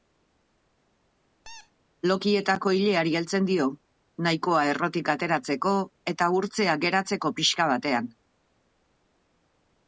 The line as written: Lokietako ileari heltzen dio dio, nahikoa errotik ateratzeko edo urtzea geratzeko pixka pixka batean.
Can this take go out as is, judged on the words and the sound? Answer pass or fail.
fail